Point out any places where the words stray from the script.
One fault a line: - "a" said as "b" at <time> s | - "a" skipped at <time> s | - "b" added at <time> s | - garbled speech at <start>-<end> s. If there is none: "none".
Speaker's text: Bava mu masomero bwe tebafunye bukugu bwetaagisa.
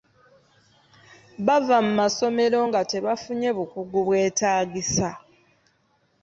- "bwe" said as "nga" at 2.7 s